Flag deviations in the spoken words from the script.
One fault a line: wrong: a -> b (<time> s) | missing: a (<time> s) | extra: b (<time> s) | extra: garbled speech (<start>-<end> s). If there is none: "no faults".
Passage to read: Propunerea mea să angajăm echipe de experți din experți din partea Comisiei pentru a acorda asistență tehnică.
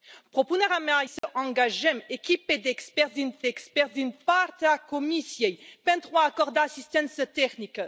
no faults